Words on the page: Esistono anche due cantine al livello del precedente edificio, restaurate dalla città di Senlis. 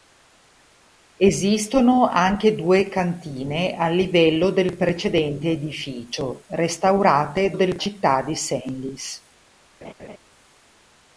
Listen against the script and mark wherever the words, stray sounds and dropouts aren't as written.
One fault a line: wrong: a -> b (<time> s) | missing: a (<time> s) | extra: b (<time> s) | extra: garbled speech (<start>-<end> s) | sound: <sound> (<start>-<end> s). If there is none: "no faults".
wrong: dalla -> del (7.5 s)
sound: laugh (9.8-10.2 s)